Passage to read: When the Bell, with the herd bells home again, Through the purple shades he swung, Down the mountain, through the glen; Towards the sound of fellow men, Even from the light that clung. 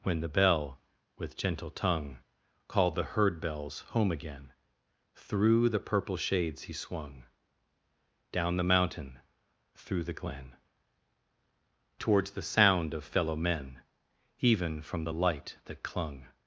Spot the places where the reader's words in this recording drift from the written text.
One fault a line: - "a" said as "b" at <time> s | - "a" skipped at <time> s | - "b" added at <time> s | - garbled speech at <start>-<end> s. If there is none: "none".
- "gentle tongue Called" added at 1.4 s